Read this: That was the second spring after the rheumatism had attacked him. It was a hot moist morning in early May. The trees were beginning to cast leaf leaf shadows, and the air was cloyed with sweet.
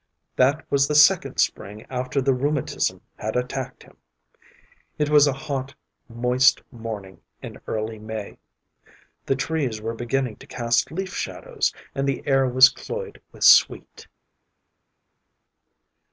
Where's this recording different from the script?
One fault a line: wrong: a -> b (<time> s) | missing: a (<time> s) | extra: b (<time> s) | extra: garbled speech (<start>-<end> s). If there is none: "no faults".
missing: leaf (11.1 s)